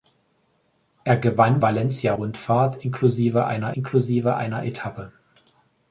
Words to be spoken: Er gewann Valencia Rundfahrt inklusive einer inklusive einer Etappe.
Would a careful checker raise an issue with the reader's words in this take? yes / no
no